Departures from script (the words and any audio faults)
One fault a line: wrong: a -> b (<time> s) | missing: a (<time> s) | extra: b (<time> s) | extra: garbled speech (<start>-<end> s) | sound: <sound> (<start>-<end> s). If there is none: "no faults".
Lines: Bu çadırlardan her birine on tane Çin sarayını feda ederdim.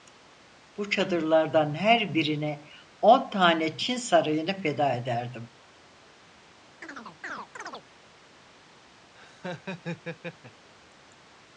sound: chirp (6.8-7.9 s)
sound: laugh (9.1-10.7 s)